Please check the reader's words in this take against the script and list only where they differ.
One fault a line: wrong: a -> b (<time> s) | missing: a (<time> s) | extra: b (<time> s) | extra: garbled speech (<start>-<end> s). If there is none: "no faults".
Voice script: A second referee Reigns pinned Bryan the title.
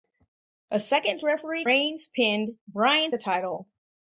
no faults